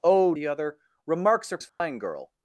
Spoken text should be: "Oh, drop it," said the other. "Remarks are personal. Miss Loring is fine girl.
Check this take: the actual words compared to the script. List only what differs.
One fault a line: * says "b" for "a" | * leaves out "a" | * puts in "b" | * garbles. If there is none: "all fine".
* leaves out "drop it said"
* leaves out "personal Miss Loring"